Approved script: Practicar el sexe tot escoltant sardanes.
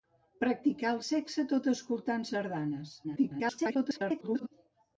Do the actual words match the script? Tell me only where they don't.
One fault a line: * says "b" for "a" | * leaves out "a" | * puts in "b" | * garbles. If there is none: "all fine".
* garbles